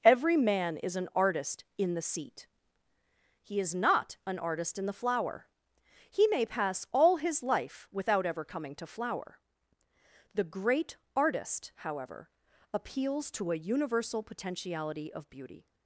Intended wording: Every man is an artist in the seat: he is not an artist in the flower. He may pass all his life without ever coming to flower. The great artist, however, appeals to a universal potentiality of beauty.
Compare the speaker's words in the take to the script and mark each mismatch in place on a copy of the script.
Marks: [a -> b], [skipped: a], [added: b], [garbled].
Every man is an artist in the seat: he is not an artist in the flower. He may pass all his life without ever coming to flower. The great artist, however, appeals to a universal potentiality of beauty.